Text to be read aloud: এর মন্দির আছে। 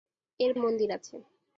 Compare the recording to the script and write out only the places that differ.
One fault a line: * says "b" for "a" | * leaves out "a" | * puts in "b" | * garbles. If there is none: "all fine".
all fine